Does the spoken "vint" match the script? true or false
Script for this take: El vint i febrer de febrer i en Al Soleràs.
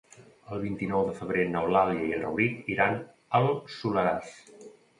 true